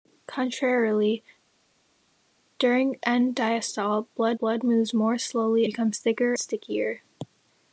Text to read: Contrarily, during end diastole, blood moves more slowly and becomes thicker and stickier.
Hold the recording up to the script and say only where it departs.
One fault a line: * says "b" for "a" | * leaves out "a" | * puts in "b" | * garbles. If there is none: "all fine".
* puts in "blood"
* leaves out "and"
* leaves out "and"